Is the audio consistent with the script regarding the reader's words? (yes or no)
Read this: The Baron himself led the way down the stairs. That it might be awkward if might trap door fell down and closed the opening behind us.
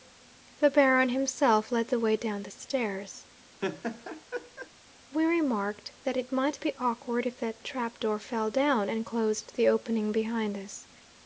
no